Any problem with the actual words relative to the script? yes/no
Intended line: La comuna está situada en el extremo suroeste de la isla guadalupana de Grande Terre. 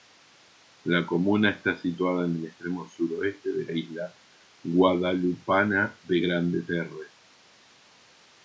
yes